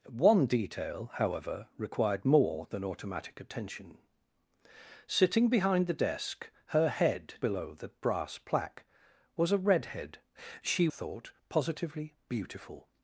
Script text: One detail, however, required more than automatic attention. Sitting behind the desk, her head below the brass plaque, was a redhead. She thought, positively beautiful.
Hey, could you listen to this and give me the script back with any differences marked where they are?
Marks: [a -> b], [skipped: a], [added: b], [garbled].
One detail, however, required more than automatic attention. Sitting behind the desk, her head below the brass plaque, was a redhead. She thought, positively beautiful.